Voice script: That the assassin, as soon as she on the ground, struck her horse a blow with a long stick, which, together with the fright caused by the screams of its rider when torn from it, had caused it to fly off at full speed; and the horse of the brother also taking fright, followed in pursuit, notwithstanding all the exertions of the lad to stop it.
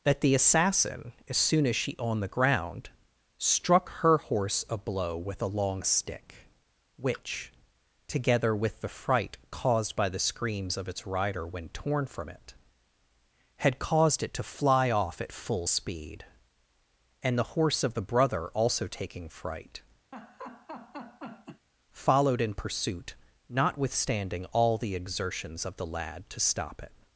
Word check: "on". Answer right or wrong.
right